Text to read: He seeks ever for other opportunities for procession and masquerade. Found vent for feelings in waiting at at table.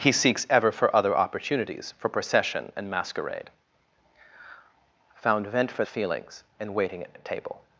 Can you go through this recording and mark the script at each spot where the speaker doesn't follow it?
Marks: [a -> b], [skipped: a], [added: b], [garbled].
He seeks ever for other opportunities for procession and masquerade. Found vent for feelings in waiting at at table.